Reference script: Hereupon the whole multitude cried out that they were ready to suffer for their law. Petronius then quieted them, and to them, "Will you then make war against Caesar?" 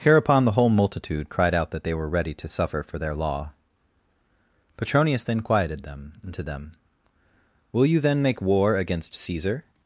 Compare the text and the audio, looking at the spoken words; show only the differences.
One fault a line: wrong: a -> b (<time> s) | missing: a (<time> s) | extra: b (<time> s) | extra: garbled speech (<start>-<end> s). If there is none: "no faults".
no faults